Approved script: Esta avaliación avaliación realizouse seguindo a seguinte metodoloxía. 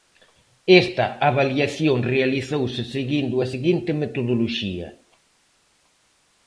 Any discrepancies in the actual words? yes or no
yes